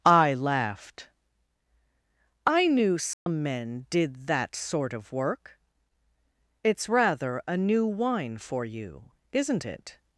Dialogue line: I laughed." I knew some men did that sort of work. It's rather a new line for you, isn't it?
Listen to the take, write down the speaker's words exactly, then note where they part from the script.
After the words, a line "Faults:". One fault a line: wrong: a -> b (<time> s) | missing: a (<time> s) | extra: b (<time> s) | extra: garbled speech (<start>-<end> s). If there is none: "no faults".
I laughed." I knew some men did that sort of work. It's rather a new wine for you, isn't it?
Faults:
wrong: line -> wine (7.8 s)